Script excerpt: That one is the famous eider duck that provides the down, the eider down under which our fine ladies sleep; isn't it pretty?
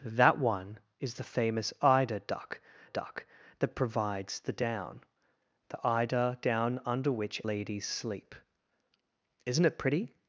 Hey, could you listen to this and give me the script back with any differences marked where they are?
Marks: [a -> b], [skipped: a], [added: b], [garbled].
That one is the famous eider duck [added: duck] that provides the down, the eider down under which [skipped: our fine] ladies sleep; isn't it pretty?